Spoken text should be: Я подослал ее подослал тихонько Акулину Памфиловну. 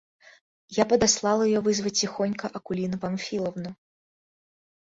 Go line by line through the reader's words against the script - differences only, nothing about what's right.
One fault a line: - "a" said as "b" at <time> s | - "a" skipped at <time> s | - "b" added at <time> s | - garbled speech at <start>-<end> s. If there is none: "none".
- "подослал" said as "вызвать" at 1.6 s